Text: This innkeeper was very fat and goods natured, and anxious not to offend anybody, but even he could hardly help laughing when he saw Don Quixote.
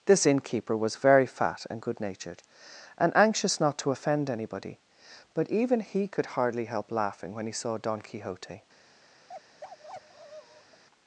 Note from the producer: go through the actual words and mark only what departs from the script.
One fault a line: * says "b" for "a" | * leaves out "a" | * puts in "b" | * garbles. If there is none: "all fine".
* says "good" for "goods"